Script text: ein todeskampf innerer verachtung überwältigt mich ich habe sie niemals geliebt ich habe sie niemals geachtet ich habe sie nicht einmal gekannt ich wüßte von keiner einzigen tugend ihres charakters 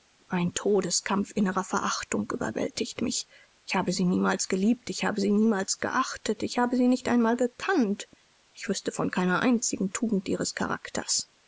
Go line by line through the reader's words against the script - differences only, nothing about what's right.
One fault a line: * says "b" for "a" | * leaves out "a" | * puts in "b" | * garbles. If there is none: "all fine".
all fine